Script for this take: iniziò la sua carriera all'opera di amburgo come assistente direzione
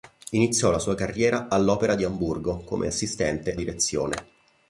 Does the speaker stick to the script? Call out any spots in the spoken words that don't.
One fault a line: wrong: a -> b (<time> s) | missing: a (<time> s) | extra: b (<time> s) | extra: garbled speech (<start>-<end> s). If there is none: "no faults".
no faults